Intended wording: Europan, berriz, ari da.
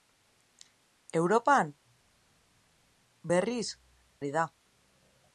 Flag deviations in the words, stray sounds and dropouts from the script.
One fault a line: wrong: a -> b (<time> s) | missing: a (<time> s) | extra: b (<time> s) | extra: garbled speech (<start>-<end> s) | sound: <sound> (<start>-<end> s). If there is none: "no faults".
no faults